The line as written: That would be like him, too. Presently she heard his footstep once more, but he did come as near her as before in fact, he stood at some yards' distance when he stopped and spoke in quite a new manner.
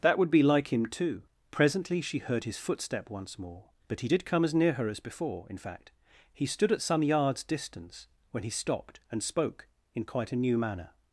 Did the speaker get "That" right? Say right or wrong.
right